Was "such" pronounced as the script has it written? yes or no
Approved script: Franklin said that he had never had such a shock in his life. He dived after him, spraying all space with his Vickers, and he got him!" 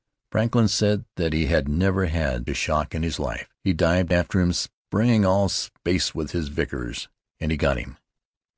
no